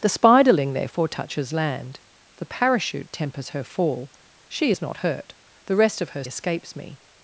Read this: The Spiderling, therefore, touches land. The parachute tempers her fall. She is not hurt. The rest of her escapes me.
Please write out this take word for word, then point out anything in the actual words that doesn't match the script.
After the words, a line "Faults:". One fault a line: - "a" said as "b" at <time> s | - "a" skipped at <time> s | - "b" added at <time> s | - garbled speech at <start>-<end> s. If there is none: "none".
The Spiderling, therefore, touches land. The parachute tempers her fall. She is not hurt. The rest of her escapes me.
Faults:
none